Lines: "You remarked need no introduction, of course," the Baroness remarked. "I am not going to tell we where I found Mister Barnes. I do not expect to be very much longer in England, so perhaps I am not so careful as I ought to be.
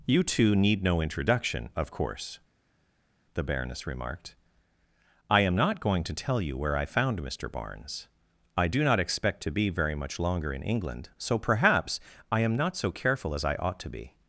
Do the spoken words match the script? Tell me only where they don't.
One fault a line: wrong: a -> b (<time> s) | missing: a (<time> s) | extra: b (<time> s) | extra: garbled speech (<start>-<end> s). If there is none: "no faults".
wrong: remarked -> two (0.2 s)
wrong: we -> you (6.4 s)